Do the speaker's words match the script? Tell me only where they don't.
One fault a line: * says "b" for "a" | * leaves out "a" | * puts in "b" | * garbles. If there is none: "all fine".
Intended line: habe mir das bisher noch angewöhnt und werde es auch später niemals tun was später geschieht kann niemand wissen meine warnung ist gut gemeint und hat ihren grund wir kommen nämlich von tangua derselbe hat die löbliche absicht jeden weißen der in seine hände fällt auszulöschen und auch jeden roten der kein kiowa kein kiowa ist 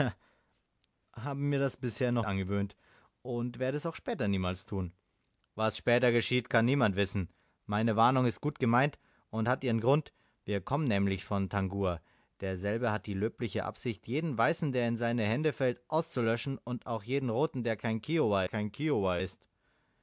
all fine